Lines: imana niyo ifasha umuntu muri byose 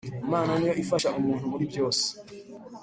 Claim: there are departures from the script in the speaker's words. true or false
false